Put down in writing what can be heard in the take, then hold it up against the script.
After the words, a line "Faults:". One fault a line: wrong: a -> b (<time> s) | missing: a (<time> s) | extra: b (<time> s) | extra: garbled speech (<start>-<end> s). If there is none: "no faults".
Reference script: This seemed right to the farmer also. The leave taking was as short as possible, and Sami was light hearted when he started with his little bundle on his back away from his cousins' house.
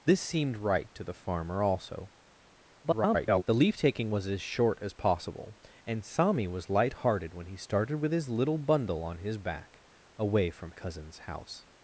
This seemed right to the farmer also. [garbled] The leave taking was as short as possible, and Sami was light hearted when he started with his little bundle on his back away from cousins' house.
Faults:
extra: garbled speech (2.8-3.4 s)
missing: his (10.7 s)